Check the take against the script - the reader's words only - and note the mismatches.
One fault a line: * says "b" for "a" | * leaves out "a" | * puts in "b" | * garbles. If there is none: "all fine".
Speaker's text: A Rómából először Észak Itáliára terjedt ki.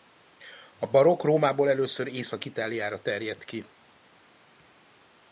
* puts in "barokk"